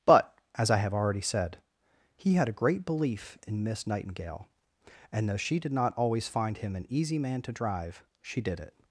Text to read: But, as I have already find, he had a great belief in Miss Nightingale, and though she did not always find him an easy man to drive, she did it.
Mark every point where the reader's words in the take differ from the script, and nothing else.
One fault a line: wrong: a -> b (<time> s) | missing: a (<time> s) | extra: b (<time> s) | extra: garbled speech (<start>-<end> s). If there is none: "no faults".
wrong: find -> said (1.2 s)